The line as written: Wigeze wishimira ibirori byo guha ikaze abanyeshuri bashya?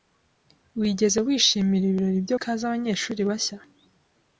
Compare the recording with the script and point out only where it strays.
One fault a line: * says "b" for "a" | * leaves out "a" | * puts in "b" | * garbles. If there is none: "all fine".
* leaves out "guha"